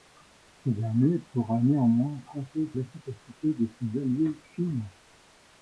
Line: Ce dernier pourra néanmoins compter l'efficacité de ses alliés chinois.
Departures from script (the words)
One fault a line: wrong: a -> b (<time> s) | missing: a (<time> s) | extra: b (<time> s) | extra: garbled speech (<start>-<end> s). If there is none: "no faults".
no faults